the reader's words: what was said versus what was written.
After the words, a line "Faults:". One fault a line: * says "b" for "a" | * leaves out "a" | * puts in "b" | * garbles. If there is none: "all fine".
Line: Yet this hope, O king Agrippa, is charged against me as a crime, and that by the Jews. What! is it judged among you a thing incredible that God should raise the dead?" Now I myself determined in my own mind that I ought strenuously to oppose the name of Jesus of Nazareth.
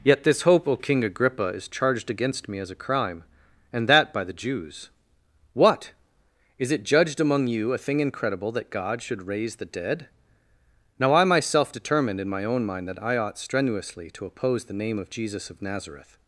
Yet this hope, O king Agrippa, is charged against me as a crime, and that by the Jews. What! is it judged among you a thing incredible that God should raise the dead?" Now I myself determined in my own mind that I ought strenuously to oppose the name of Jesus of Nazareth.
Faults:
all fine